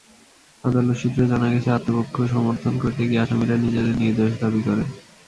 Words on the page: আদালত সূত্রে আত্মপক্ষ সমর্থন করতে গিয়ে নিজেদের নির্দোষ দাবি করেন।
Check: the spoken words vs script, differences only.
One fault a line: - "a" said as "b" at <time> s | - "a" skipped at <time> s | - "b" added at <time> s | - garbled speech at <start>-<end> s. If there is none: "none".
- "জানা গেছে" added at 1.3 s
- "আসামিরা" added at 3.2 s